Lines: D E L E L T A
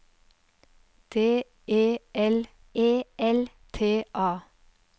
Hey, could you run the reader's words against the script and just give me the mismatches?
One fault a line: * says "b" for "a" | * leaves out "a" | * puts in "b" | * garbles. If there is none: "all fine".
all fine